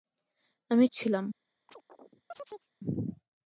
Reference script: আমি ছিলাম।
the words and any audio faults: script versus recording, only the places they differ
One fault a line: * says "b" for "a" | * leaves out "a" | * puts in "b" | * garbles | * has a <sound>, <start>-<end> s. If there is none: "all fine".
* has a chirp, 1.7-2.7 s